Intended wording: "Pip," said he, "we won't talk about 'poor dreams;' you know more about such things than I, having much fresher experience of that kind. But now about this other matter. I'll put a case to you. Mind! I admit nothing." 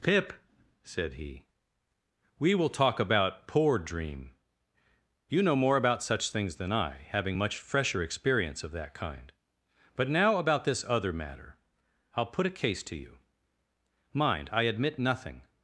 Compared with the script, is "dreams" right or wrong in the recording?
wrong